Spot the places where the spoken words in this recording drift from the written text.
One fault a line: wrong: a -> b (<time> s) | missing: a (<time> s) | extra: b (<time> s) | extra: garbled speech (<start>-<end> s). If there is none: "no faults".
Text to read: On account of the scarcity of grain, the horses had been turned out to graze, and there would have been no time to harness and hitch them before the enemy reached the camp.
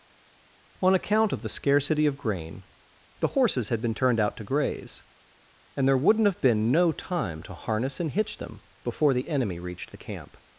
wrong: would -> wouldn't (6.0 s)